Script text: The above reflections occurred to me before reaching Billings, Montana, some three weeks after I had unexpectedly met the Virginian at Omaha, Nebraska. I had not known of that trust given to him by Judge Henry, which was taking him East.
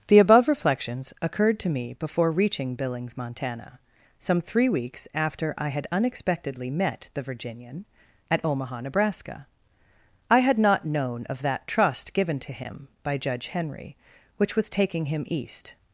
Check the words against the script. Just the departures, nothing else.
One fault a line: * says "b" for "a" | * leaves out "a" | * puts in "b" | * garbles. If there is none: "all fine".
all fine